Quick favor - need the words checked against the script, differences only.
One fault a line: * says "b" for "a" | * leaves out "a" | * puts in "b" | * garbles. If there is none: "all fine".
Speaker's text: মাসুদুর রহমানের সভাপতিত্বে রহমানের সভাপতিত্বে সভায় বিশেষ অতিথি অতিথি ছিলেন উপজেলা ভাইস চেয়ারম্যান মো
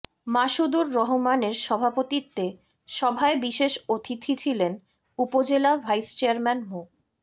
* leaves out "রহমানের সভাপতিত্বে"
* leaves out "অতিথি"